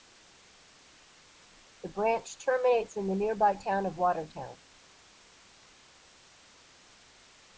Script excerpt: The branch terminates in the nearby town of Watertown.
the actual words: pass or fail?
pass